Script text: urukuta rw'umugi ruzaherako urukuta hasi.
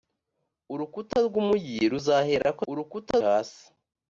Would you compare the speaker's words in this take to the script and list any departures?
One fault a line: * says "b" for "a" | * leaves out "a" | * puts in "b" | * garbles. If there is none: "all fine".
all fine